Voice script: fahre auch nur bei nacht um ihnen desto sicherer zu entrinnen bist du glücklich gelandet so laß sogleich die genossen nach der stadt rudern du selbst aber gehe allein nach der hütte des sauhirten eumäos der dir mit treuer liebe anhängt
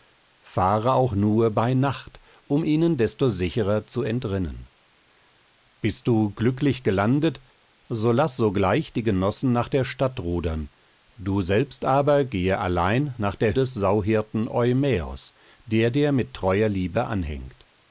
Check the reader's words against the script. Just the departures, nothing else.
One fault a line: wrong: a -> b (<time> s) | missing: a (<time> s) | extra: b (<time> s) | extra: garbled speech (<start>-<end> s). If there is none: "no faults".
missing: hütte (13.6 s)